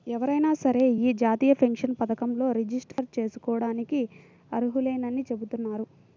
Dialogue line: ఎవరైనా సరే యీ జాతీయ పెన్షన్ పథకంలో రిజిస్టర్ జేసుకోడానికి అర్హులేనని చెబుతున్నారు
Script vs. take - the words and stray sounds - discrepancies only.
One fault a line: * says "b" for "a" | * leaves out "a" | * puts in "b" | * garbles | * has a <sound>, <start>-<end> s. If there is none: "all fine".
* has a dropout, 2.9-3.0 s